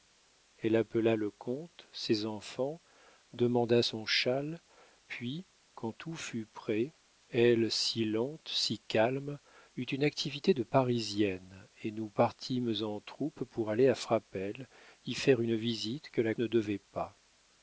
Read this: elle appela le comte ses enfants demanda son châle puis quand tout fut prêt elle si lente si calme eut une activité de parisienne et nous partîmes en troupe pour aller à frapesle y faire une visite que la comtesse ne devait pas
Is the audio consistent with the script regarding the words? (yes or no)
no